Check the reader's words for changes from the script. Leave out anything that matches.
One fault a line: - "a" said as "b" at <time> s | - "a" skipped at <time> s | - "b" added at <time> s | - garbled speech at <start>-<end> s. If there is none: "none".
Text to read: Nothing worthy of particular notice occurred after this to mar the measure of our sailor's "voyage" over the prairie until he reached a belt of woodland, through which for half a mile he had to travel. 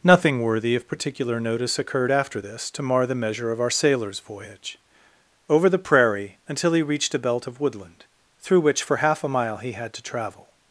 none